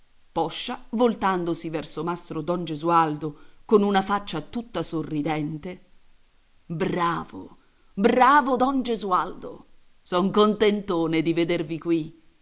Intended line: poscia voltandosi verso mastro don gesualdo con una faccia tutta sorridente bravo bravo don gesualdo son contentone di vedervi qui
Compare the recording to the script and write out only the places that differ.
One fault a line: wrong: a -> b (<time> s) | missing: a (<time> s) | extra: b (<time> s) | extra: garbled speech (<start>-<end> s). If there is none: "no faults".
no faults